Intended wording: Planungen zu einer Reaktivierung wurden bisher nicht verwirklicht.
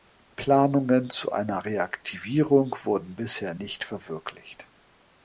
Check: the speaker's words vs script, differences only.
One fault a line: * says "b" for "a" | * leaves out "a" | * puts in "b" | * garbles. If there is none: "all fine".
all fine